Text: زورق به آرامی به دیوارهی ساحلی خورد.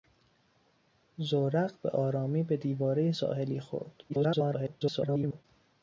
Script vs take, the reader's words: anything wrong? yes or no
yes